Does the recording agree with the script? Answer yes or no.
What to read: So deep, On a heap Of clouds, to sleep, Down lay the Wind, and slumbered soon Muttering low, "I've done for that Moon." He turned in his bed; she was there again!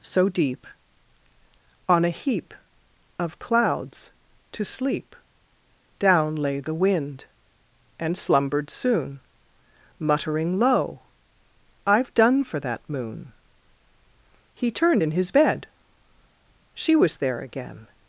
yes